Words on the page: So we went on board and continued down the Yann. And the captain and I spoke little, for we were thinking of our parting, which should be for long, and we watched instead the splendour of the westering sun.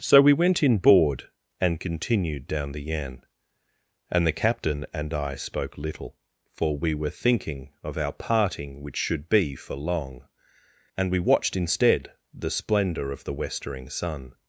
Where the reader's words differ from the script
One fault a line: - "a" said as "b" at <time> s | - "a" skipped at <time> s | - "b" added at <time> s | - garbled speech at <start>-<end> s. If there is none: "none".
- "on" said as "in" at 0.6 s